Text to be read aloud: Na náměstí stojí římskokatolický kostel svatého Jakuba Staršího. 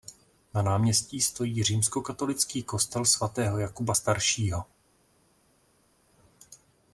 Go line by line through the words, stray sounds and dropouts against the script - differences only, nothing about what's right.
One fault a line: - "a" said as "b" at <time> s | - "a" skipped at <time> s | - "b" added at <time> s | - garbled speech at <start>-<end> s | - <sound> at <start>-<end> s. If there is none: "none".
none